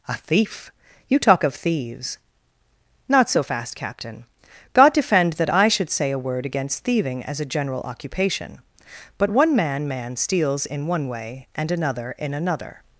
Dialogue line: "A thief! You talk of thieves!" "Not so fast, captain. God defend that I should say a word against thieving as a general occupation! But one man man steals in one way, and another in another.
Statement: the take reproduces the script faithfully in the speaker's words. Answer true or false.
true